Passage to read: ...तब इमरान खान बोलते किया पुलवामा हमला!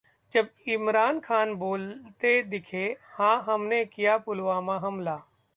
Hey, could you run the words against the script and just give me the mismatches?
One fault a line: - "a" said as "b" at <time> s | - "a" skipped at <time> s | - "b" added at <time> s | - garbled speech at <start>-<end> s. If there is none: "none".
- "तब" said as "जब" at 0.3 s
- "दिखे हां हमने" added at 2.4 s